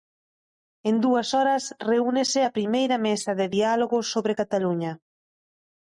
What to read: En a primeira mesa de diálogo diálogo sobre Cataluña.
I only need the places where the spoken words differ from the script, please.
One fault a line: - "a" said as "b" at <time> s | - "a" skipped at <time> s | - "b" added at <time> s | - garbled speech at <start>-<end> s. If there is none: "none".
- "dúas horas reúnese" added at 1.1 s
- "diálogo" skipped at 4.0 s